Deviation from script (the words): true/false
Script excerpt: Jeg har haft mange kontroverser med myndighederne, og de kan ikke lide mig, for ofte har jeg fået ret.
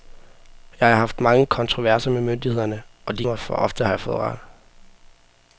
true